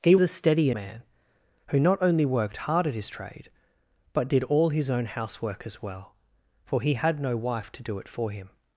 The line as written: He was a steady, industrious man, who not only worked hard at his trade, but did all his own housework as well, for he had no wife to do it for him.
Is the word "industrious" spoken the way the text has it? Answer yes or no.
no